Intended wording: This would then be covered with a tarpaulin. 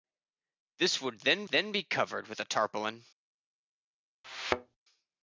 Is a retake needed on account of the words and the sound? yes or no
yes